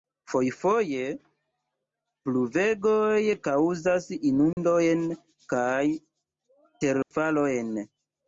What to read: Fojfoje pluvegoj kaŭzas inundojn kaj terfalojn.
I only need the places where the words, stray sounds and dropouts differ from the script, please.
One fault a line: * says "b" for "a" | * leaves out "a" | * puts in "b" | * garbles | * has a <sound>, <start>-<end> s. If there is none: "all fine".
* has a dropout, 4.5-4.6 s
* has a dropout, 7.0-7.1 s